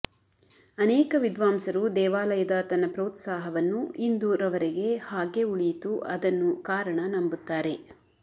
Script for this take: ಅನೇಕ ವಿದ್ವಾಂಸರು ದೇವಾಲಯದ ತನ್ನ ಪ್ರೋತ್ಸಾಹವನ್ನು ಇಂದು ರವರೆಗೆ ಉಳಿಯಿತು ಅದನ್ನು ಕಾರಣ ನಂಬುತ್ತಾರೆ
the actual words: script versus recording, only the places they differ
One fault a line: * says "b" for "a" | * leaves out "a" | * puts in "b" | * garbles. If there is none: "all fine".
* puts in "ಹಾಗೇ"